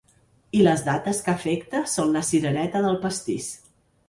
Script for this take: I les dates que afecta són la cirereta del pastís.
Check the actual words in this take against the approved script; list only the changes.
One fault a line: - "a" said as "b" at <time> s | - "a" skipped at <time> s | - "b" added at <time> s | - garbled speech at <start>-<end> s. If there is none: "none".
none